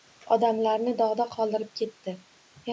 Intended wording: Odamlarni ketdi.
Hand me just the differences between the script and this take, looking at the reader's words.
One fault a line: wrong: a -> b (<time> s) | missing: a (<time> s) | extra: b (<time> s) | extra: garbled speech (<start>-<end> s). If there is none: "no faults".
extra: dog'da qoldirib (1.0 s)